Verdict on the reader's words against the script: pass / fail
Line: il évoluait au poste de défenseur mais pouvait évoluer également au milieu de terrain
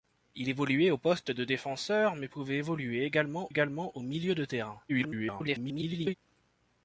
fail